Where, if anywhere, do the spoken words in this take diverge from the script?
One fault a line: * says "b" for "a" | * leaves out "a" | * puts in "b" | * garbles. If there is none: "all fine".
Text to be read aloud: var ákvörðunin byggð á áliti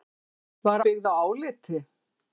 * leaves out "ákvörðunin"